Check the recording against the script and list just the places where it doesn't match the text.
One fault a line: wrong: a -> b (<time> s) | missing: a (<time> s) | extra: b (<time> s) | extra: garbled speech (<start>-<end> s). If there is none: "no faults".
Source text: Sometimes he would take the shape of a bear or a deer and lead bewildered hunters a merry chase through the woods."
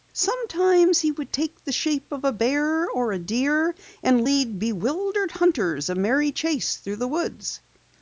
no faults